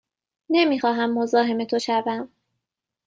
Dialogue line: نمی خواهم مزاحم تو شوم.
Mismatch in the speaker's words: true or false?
false